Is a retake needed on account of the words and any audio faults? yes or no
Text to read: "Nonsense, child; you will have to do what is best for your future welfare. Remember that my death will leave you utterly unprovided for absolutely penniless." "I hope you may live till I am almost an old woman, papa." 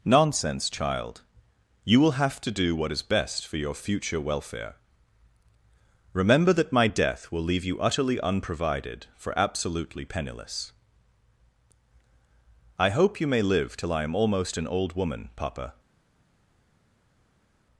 no